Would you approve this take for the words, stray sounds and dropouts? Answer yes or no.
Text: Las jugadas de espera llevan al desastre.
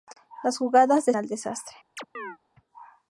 no